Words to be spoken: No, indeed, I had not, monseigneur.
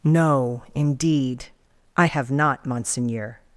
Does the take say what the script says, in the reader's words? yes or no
no